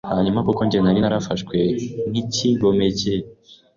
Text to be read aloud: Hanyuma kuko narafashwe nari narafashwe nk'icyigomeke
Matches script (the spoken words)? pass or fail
fail